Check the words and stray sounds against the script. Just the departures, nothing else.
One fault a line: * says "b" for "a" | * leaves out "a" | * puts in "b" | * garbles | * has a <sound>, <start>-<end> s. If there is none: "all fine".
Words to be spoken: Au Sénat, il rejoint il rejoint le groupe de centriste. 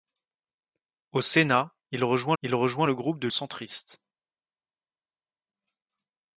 all fine